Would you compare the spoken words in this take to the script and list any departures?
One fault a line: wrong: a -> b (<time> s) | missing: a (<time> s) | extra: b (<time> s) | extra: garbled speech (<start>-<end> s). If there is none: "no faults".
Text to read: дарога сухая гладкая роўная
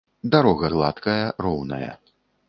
missing: сухая (0.7 s)